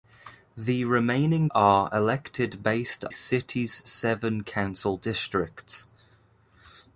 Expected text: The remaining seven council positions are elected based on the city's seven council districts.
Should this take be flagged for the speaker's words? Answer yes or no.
yes